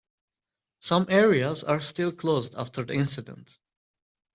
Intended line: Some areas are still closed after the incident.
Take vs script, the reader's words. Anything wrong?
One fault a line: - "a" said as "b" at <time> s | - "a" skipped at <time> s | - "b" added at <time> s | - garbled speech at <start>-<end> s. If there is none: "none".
none